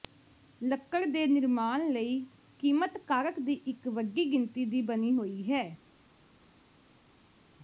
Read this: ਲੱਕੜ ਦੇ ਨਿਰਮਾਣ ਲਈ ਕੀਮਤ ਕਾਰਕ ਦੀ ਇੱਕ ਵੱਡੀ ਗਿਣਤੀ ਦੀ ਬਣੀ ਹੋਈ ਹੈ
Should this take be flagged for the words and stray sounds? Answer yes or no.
no